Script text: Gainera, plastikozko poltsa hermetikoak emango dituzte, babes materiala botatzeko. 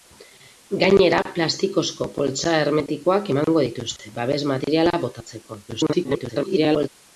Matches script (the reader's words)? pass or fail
fail